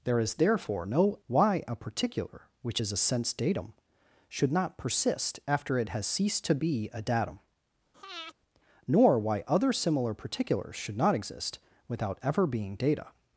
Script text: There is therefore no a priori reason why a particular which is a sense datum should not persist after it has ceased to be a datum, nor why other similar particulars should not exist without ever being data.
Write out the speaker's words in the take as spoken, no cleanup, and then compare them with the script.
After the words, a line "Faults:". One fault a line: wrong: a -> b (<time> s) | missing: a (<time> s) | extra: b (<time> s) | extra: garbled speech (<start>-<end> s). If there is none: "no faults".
There is therefore no why a particular which is a sense datum should not persist after it has ceased to be a datum, nor why other similar particulars should not exist without ever being data.
Faults:
missing: a priori reason (1.2 s)